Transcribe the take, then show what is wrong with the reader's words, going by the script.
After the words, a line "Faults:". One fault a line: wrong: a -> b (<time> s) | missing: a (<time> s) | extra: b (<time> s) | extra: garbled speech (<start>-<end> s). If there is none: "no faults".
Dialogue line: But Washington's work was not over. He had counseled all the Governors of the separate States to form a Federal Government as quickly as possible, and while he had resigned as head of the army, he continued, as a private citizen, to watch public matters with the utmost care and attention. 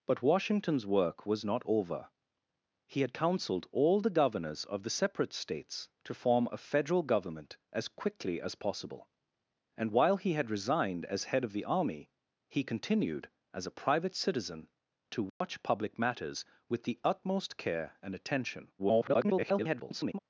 But Washington's work was not over. He had counseled all the Governors of the separate States to form a Federal Government as quickly as possible, and while he had resigned as head of the army, he continued, as a private citizen, to watch public matters with the utmost care and attention. [garbled]
Faults:
extra: garbled speech (18.8-20.2 s)